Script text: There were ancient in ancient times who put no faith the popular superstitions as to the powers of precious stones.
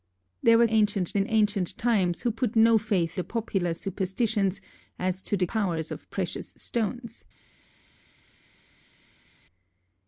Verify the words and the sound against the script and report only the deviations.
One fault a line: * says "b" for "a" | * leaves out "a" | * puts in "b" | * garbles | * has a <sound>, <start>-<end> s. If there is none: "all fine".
all fine